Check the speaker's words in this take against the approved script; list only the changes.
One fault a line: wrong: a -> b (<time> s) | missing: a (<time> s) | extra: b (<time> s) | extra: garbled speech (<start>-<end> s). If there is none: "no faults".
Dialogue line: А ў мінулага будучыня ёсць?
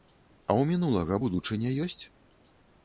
no faults